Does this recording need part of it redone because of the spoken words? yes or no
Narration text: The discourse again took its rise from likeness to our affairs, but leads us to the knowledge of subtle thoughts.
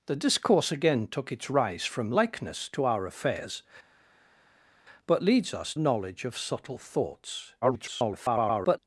yes